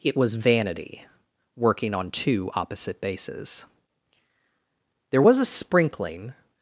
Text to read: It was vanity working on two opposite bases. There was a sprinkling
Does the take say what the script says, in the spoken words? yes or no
yes